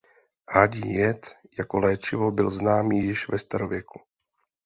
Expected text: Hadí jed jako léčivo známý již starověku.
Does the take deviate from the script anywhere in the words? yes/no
yes